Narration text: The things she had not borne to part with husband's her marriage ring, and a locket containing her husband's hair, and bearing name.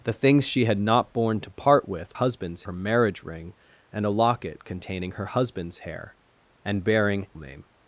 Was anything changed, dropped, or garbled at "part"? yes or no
no